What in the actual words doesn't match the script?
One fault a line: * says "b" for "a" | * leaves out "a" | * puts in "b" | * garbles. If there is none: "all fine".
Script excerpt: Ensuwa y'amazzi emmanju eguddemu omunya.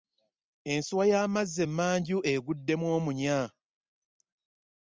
all fine